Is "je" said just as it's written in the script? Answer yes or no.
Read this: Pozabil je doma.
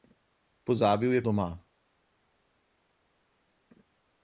yes